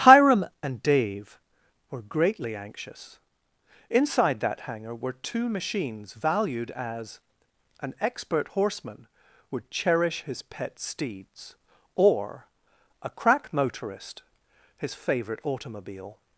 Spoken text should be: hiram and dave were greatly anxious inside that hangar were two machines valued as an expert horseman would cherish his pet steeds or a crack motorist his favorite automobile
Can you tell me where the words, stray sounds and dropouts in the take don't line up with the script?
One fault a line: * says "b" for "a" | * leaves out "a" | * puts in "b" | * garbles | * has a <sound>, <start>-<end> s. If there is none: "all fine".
all fine